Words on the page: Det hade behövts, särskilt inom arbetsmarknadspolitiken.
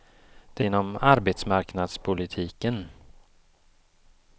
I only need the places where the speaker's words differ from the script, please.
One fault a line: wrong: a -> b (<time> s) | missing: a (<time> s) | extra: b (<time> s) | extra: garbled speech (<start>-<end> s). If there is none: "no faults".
missing: hade behövts särskilt (0.7 s)